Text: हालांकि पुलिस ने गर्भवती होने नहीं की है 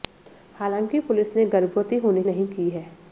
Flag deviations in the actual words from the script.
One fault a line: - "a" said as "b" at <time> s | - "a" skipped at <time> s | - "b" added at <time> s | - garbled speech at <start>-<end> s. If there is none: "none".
none